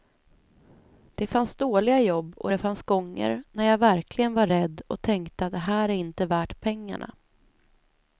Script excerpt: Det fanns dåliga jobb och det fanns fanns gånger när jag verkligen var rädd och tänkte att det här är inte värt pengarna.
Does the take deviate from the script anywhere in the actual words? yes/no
yes